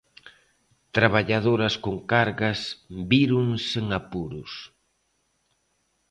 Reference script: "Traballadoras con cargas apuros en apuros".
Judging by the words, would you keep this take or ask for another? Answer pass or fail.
fail